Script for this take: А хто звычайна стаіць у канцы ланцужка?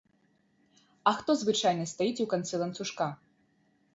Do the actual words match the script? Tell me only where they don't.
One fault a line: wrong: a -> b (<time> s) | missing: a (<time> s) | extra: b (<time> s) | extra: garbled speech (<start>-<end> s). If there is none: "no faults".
no faults